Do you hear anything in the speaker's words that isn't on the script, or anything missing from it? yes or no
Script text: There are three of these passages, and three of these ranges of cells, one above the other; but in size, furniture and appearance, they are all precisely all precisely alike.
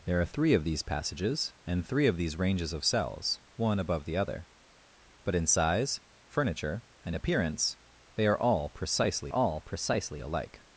no